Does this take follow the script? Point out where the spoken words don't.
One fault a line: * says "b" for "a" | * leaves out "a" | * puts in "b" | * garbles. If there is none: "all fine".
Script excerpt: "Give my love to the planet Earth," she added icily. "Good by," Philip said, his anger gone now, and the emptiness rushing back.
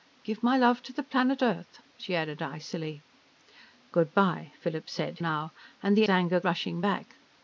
* leaves out "his anger gone"
* says "anger" for "emptiness"